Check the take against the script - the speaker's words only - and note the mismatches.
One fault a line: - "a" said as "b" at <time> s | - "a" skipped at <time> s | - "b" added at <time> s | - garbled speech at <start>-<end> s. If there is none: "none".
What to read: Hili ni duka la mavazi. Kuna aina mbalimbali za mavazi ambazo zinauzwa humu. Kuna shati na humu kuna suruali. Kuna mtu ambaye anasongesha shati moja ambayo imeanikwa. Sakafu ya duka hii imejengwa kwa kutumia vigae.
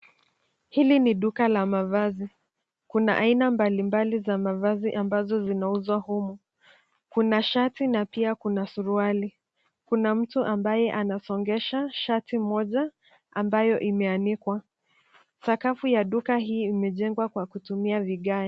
- "humu" said as "pia" at 8.1 s